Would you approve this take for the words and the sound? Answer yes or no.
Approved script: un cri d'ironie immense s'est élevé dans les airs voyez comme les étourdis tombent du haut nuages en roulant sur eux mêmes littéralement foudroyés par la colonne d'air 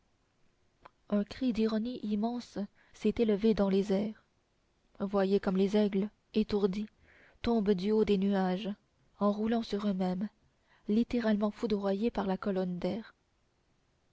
no